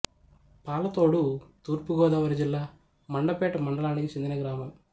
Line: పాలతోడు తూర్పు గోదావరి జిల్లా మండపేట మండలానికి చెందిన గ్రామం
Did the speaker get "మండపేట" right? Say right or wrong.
right